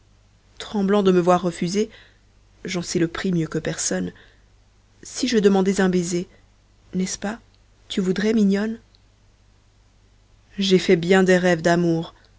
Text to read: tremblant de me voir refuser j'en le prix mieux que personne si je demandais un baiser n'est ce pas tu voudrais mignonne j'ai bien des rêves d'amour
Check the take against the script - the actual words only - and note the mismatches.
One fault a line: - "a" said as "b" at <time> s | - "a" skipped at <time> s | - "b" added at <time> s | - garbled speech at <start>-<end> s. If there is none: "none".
- "sais" added at 2.8 s
- "fait" added at 10.8 s